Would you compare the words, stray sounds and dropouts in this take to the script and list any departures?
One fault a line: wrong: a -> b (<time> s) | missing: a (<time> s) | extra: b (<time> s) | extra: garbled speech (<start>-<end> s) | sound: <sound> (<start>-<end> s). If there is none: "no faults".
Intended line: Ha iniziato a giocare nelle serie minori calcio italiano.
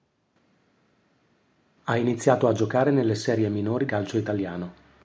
no faults